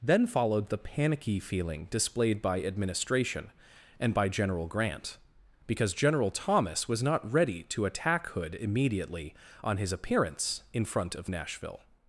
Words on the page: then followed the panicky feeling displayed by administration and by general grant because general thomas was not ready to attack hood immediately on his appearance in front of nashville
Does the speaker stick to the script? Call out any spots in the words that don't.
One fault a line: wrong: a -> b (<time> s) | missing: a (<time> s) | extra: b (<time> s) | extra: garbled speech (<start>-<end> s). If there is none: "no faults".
no faults